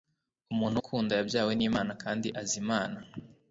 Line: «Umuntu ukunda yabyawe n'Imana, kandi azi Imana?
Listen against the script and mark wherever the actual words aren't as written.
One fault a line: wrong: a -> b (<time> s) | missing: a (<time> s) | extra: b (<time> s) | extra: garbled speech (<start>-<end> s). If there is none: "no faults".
no faults